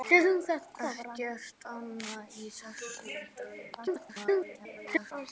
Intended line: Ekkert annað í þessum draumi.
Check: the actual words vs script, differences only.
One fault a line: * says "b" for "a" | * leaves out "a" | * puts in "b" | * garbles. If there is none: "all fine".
* garbles